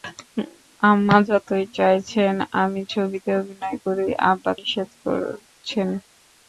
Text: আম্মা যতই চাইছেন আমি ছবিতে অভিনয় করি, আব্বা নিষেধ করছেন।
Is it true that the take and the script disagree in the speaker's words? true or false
false